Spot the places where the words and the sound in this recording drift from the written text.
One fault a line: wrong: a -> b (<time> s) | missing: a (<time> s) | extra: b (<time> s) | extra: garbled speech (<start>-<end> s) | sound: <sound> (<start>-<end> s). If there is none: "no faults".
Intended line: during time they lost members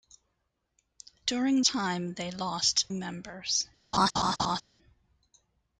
sound: laugh (3.9-4.6 s)